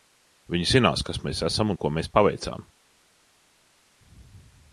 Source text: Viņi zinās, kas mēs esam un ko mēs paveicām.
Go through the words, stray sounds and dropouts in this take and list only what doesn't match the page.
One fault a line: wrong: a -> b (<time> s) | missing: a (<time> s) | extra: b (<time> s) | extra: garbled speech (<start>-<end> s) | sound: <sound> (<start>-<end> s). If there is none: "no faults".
no faults